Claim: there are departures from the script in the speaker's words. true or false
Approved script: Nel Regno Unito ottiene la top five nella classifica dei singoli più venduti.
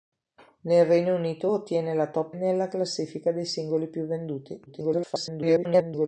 true